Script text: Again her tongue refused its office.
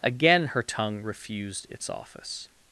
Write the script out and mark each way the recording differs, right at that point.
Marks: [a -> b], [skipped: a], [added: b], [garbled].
Again her tongue refused its office.